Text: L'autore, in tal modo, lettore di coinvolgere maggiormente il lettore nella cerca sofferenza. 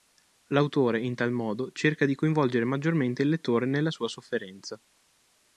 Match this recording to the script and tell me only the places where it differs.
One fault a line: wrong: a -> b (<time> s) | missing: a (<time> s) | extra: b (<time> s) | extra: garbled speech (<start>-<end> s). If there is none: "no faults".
wrong: lettore -> cerca (1.7 s)
wrong: cerca -> sua (3.9 s)